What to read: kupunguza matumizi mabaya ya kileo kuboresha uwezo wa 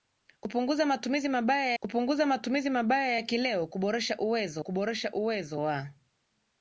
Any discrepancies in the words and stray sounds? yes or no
yes